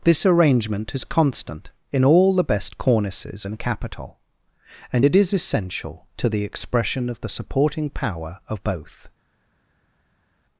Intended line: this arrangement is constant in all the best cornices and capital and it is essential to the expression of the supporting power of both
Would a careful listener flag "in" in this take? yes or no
no